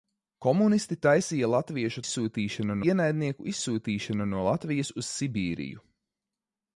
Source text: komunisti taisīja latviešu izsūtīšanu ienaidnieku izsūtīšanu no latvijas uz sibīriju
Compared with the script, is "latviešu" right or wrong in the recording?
right